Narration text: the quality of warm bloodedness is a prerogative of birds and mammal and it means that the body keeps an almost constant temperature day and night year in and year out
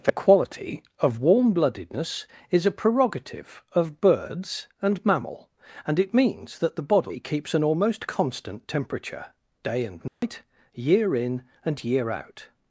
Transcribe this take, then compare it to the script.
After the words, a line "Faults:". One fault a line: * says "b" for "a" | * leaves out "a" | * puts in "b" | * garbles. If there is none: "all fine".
the quality of warm bloodedness is a prerogative of birds and mammal and it means that the body keeps an almost constant temperature day and night year in and year out
Faults:
all fine